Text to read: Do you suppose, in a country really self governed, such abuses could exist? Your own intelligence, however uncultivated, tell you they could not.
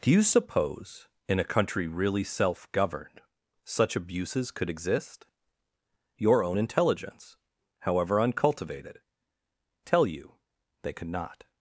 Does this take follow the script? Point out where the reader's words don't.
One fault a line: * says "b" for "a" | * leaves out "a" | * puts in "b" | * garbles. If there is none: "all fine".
all fine